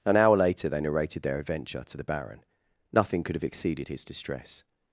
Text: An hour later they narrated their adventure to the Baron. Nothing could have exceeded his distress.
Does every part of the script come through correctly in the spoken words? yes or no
yes